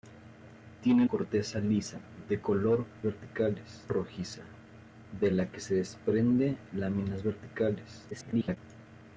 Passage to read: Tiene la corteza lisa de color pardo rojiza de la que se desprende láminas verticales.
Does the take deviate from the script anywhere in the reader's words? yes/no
yes